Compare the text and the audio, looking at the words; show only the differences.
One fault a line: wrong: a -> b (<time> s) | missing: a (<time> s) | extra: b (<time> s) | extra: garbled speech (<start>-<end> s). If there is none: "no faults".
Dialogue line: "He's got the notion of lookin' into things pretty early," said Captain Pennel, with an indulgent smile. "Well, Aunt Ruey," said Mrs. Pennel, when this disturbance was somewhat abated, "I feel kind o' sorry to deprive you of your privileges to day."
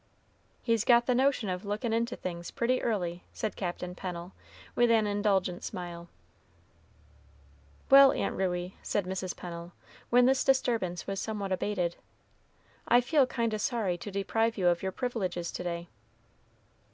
no faults